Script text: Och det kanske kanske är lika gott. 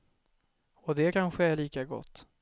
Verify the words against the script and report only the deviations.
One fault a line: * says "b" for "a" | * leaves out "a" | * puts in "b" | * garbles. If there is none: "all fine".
* leaves out "kanske"